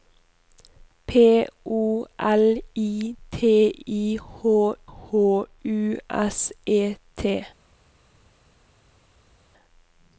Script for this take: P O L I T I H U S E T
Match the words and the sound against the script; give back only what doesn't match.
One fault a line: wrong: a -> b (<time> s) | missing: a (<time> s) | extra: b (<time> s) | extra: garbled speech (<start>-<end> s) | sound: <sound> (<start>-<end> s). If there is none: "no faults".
extra: H (4.8 s)